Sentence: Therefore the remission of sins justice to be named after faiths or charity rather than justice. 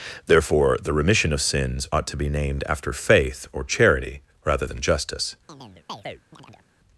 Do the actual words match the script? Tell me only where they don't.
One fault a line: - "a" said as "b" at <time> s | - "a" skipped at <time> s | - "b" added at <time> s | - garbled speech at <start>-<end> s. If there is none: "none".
- "justice" said as "ought" at 1.9 s
- "faiths" said as "faith" at 2.9 s